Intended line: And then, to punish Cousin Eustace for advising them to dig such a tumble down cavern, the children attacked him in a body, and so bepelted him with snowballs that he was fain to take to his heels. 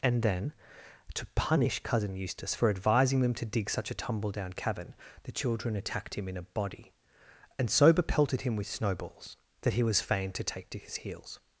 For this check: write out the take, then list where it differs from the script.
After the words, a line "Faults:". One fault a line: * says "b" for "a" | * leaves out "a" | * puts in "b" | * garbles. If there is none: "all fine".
And then, to punish Cousin Eustace for advising them to dig such a tumble down cavern, the children attacked him in a body, and so bepelted him with snowballs that he was fain to take to his heels.
Faults:
all fine